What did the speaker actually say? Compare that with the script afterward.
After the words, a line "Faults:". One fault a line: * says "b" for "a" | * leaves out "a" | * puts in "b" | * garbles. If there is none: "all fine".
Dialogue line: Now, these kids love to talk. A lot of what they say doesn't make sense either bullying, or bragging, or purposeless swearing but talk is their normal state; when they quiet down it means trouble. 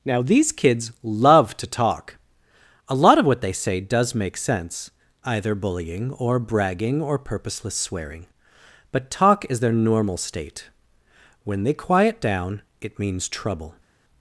Now, these kids love to talk. A lot of what they say does make sense either bullying, or bragging, or purposeless swearing but talk is their normal state; when they quiet down it means trouble.
Faults:
* says "does" for "doesn't"